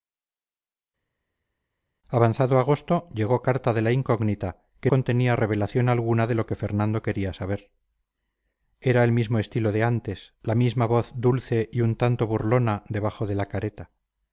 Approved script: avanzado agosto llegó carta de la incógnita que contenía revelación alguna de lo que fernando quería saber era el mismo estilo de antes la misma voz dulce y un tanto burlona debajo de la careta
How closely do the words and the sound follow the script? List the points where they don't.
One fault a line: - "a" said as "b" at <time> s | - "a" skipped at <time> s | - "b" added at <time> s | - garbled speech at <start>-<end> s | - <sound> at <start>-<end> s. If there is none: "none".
none